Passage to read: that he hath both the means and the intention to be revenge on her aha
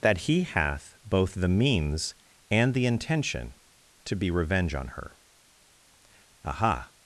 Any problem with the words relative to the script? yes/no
no